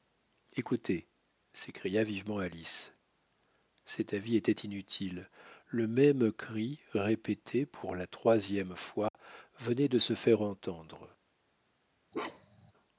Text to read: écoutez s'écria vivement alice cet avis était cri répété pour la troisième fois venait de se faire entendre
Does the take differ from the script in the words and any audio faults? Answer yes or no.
yes